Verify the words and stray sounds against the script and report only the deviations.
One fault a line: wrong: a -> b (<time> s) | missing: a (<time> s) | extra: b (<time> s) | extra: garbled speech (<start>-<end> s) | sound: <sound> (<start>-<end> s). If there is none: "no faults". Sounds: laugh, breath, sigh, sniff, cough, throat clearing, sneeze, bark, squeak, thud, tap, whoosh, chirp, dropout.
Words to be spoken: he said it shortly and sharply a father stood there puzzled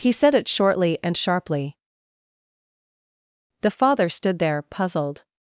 wrong: a -> the (3.6 s)